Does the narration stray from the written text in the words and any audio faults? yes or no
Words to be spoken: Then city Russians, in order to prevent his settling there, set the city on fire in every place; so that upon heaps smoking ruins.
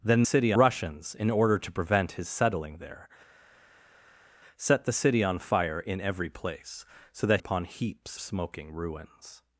no